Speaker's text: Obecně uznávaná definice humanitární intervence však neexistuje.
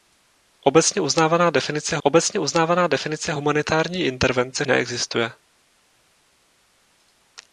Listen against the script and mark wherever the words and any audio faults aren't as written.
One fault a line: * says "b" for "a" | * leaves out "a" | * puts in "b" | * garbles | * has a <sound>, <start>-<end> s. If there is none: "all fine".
* puts in "obecně uznávaná definice"
* leaves out "však"